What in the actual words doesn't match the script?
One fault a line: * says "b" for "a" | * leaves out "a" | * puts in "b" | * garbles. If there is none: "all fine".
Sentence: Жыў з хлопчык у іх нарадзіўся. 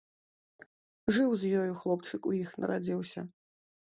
* puts in "ёю"